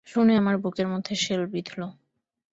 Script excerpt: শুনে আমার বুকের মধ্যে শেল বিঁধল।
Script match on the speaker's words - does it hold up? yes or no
yes